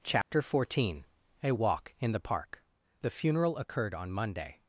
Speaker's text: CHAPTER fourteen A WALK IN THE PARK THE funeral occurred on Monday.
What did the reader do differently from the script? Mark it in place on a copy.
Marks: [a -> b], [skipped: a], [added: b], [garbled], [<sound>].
CHAPTER [dropout] fourteen A WALK IN THE PARK THE funeral occurred on Monday.